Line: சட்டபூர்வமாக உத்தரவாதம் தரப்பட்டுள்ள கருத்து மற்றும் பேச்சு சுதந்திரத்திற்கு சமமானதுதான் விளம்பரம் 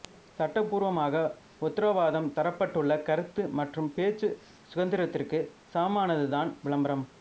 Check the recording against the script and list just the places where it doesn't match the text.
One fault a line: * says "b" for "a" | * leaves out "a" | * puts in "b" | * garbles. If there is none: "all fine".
all fine